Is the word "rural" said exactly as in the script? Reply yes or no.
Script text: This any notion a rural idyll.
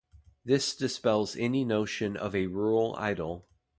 yes